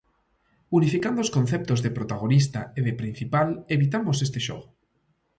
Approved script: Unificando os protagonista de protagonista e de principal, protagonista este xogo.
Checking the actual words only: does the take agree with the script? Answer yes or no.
no